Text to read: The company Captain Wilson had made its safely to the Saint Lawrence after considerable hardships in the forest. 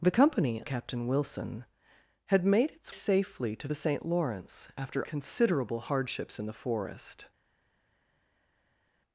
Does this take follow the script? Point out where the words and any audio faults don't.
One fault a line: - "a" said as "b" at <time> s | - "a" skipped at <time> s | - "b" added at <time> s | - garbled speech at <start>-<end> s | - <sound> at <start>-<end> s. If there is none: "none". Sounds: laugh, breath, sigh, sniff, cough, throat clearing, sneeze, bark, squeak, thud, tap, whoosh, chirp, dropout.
none